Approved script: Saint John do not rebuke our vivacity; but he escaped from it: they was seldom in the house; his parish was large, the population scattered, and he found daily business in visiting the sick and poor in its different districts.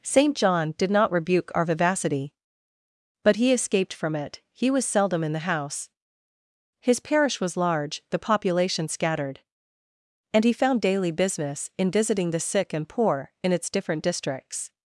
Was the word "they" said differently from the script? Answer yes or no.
yes